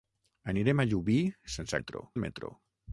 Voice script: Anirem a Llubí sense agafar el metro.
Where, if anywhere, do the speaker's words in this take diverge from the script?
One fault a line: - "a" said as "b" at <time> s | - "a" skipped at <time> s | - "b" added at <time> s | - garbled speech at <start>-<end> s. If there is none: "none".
- "agafar" said as "metro" at 1.8 s